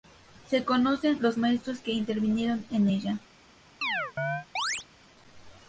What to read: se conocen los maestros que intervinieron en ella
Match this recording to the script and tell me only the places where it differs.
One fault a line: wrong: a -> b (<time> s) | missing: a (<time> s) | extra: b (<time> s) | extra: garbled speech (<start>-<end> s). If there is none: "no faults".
no faults